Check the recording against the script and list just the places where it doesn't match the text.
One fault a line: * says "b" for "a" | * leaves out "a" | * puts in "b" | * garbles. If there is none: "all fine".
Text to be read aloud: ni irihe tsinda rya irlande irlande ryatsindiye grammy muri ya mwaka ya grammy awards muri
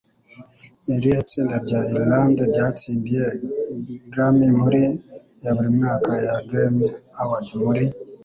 * leaves out "irlande"
* puts in "buri"